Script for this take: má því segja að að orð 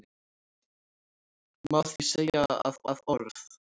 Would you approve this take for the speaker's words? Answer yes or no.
yes